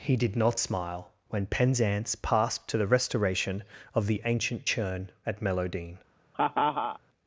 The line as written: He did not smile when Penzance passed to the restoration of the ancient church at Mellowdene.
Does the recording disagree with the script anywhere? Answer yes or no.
yes